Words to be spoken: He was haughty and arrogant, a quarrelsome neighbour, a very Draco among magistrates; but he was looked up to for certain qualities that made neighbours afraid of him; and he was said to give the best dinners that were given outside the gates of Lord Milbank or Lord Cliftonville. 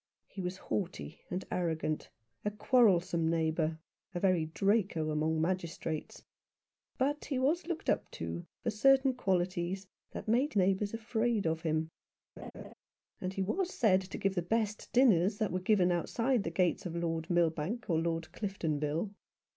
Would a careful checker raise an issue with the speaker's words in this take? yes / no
no